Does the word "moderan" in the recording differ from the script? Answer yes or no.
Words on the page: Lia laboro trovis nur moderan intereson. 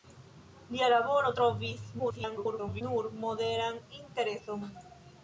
no